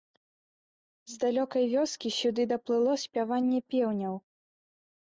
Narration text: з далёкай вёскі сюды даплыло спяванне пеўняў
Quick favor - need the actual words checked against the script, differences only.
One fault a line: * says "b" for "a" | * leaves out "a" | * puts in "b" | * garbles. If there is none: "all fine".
all fine